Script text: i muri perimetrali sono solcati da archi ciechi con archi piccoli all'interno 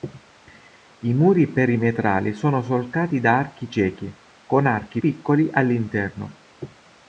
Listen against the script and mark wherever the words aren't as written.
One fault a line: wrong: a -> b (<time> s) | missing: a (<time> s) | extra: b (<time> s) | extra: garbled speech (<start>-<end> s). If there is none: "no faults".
no faults